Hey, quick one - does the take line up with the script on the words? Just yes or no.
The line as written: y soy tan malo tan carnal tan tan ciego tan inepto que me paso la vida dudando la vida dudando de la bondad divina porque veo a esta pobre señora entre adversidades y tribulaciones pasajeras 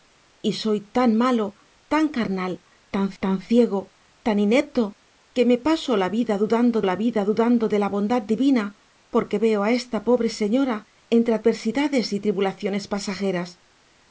yes